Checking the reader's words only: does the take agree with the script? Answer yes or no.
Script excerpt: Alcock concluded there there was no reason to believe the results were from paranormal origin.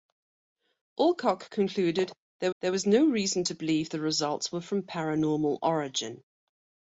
yes